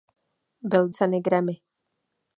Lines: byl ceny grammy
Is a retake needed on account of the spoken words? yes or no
no